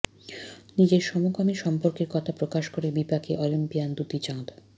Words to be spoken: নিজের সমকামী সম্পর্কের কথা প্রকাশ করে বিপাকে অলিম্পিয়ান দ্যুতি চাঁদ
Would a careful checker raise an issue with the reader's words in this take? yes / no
no